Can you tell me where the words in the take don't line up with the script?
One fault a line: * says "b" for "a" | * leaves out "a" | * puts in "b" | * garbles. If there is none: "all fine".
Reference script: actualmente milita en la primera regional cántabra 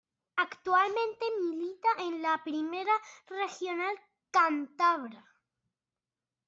all fine